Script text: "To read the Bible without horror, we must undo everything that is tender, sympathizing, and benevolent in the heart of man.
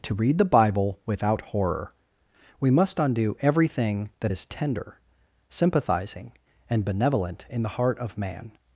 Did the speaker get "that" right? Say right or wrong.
right